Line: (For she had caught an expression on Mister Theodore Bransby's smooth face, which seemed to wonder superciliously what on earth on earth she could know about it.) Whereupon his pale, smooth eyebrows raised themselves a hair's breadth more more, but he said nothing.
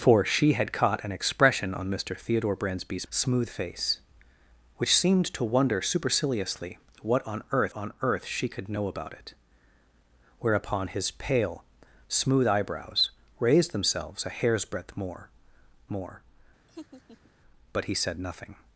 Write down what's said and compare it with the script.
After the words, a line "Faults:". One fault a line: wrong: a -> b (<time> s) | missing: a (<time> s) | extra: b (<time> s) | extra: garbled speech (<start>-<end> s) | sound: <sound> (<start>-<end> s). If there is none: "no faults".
(For she had caught an expression on Mister Theodore Bransby's smooth face, which seemed to wonder superciliously what on earth on earth she could know about it.) Whereupon his pale, smooth eyebrows raised themselves a hair's breadth more more, but he said nothing.
Faults:
sound: laugh (16.7-17.3 s)